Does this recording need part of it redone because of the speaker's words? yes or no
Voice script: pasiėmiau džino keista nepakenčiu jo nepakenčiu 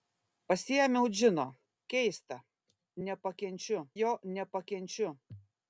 no